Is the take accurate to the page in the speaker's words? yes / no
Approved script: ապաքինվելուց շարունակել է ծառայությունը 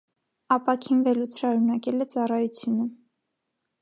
yes